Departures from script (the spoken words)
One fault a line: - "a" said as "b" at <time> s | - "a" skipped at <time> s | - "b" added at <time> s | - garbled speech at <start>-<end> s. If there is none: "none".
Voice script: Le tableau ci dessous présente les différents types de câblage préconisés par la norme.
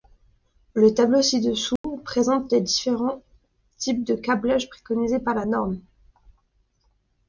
none